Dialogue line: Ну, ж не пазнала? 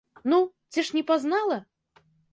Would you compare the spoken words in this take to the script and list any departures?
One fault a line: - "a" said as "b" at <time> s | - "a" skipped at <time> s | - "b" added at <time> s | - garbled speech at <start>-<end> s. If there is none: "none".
- "ці" added at 0.7 s